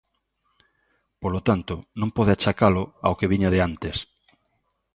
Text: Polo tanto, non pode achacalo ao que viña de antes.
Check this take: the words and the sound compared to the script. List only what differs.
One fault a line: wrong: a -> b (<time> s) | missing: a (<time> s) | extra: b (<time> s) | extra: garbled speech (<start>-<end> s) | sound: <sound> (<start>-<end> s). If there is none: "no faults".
no faults